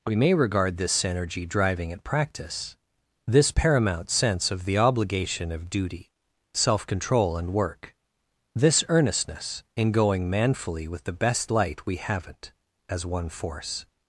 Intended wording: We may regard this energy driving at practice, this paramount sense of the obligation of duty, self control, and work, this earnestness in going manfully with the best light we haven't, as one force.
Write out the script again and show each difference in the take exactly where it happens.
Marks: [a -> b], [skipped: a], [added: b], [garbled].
We may regard this energy driving at practice, this paramount sense of the obligation of duty, self control, and work, this earnestness in going manfully with the best light we haven't, as one force.